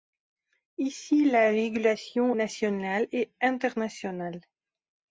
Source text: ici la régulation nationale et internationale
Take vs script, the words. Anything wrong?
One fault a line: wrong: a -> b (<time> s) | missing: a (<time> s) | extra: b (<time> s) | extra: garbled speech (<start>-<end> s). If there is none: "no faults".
no faults